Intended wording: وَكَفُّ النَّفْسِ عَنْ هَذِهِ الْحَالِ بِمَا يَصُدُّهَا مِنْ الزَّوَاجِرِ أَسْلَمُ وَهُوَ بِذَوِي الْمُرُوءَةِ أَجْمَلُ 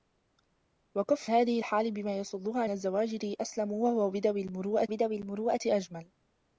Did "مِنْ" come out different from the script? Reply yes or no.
yes